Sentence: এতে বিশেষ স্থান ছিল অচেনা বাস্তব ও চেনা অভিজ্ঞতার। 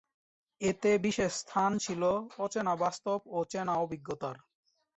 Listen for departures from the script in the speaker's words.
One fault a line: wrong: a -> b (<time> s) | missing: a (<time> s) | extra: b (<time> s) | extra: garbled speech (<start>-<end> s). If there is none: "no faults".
no faults